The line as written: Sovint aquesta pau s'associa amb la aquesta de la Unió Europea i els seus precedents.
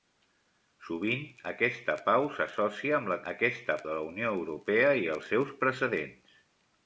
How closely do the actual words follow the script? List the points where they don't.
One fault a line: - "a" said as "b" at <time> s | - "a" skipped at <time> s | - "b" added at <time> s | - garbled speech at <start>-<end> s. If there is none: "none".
none